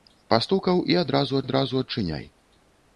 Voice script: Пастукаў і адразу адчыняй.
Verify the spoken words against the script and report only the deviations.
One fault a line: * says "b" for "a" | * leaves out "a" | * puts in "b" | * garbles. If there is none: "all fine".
* puts in "адразу"